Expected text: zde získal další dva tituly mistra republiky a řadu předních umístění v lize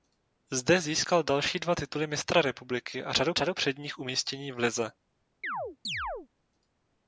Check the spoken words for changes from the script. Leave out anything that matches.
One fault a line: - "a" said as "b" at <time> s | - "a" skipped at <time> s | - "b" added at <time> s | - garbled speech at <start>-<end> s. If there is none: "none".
- "řadu" added at 3.3 s